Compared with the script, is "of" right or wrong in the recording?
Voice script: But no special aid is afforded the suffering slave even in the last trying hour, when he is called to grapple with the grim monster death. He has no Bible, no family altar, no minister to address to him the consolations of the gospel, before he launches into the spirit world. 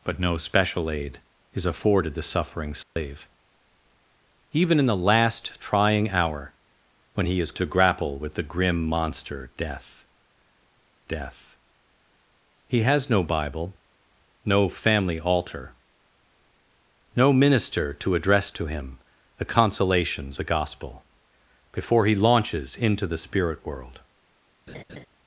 wrong